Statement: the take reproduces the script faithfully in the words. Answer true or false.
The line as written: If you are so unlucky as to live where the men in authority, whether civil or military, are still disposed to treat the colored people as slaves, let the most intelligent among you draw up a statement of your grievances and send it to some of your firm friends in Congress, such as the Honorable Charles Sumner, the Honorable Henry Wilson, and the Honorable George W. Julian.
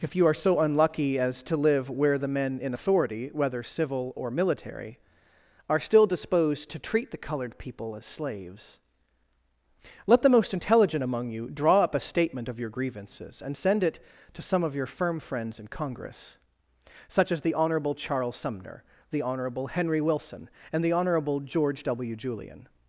true